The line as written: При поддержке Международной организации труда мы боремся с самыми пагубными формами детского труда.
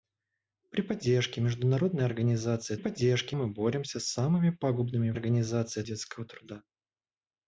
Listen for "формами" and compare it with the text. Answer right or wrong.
wrong